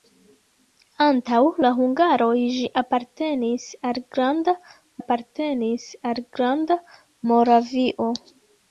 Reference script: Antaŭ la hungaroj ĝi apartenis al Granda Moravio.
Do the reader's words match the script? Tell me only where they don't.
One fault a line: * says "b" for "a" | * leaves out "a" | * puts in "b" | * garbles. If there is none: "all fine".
* puts in "apartenis al Granda"